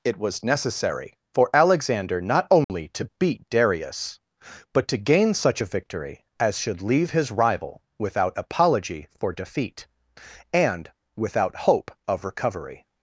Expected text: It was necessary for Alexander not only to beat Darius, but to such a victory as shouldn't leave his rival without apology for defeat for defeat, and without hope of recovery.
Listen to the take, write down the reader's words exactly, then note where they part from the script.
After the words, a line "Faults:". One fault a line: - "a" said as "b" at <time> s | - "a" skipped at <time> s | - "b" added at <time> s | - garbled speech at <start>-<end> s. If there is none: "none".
It was necessary for Alexander not only to beat Darius, but to gain such a victory as should leave his rival without apology for defeat, and without hope of recovery.
Faults:
- "gain" added at 5.0 s
- "shouldn't" said as "should" at 6.6 s
- "for defeat" skipped at 9.9 s